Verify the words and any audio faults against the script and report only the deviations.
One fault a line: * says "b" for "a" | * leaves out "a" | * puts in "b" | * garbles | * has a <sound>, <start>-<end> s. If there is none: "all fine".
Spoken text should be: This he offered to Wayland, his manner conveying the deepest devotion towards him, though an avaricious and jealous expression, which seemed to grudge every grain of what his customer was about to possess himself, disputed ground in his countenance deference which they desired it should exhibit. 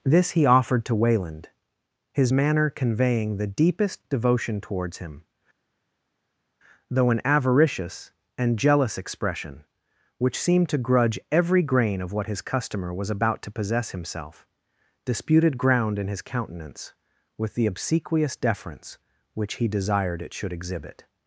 * puts in "with the obsequious"
* says "he" for "they"